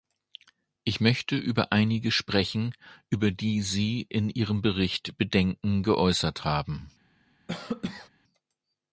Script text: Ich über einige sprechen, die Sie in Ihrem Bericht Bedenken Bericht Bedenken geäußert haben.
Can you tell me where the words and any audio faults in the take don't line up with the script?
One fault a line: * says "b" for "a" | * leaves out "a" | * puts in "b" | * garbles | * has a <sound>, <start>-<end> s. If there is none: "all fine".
* puts in "möchte"
* puts in "über"
* leaves out "Bericht Bedenken"
* has a cough, 7.5-8.1 s